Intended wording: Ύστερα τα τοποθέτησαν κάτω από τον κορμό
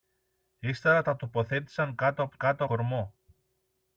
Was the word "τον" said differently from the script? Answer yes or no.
yes